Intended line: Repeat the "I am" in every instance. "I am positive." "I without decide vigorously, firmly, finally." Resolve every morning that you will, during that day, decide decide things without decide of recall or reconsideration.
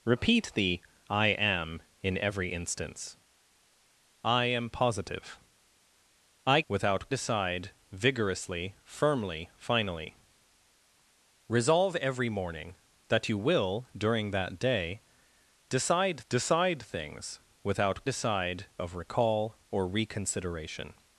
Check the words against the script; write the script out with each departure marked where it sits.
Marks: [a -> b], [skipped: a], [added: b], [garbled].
Repeat the "I am" in every instance. "I am positive." "I without decide vigorously, firmly, finally." Resolve every morning that you will, during that day, decide decide things without decide of recall or reconsideration.